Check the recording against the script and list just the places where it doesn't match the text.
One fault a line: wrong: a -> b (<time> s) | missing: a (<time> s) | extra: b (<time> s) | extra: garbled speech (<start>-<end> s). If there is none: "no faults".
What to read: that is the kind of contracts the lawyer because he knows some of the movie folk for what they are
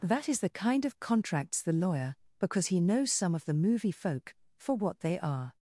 no faults